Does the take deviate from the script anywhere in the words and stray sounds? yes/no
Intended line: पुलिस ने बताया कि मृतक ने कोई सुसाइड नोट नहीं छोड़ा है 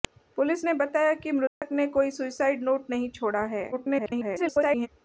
yes